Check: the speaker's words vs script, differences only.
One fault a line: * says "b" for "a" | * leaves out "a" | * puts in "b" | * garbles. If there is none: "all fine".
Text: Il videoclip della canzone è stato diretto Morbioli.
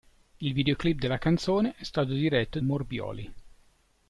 all fine